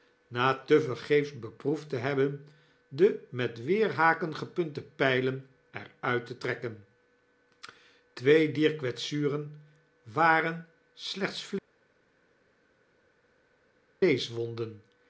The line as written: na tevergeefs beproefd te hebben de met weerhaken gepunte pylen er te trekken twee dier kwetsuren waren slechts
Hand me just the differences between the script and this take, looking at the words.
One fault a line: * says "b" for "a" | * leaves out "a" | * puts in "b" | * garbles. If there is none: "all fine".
* puts in "uit"